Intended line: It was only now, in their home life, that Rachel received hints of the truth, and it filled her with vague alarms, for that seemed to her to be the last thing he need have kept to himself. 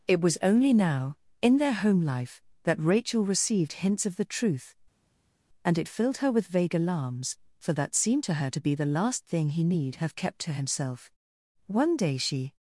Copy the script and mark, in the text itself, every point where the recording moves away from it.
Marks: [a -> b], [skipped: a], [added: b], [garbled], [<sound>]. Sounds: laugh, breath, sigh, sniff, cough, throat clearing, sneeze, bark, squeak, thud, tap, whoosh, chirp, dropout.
It was only now, in their home life, that Rachel received hints of the truth, and it filled her with vague alarms, for that seemed to her to be the last thing he need have kept to himself. [added: One day she]